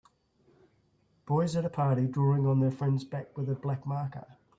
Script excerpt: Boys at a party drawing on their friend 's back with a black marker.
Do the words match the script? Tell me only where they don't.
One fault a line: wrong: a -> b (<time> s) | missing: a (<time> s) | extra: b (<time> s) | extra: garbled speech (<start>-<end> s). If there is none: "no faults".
no faults